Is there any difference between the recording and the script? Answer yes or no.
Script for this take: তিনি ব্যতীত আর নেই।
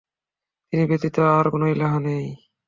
yes